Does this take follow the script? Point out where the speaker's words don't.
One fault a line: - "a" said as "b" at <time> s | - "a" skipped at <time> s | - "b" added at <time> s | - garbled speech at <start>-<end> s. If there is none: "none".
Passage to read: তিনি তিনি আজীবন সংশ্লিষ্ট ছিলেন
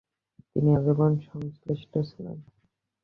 - "তিনি" skipped at 0.7 s